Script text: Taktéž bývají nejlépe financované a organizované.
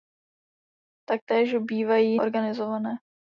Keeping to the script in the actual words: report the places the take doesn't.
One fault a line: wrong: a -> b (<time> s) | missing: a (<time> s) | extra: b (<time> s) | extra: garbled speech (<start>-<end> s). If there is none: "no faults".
missing: nejlépe financované a (2.2 s)